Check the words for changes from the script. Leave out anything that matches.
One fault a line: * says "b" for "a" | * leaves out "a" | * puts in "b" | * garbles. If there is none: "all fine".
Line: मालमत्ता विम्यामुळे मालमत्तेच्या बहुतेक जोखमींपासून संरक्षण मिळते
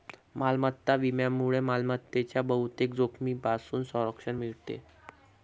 all fine